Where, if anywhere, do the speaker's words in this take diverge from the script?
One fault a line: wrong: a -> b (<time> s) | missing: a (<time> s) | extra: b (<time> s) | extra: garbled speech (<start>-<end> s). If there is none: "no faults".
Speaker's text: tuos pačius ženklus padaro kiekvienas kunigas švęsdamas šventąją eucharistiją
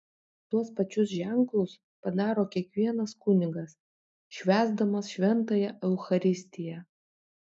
no faults